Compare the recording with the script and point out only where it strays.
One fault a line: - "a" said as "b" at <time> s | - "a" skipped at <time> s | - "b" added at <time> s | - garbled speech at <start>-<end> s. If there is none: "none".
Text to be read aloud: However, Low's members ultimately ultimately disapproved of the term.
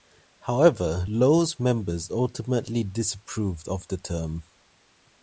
- "ultimately" skipped at 2.8 s